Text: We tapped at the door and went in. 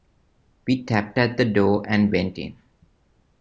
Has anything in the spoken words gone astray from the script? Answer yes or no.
no